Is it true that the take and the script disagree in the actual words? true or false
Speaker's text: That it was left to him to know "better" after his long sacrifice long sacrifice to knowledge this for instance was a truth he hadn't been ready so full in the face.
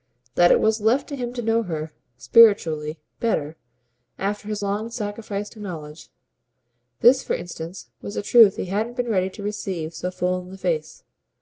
true